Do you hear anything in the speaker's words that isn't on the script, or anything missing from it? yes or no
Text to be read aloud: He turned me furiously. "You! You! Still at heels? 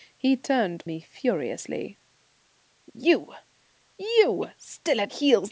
no